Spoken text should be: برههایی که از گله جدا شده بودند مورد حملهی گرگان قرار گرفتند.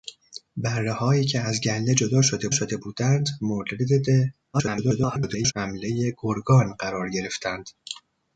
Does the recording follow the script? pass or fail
fail